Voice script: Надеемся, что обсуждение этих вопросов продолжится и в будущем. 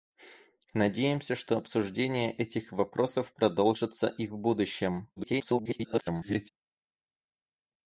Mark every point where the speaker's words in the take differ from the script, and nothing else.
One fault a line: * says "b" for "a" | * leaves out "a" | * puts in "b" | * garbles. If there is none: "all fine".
* garbles